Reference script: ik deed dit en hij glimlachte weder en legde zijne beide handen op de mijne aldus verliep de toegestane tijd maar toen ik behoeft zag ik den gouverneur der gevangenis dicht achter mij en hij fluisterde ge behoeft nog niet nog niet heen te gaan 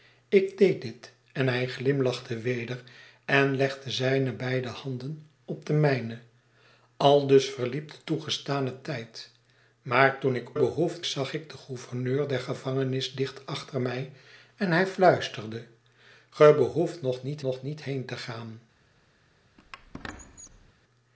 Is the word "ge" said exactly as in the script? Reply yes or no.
yes